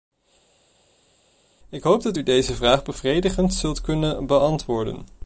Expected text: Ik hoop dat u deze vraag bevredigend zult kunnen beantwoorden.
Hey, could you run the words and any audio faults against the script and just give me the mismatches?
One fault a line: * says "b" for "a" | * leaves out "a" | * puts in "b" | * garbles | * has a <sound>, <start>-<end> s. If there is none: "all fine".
all fine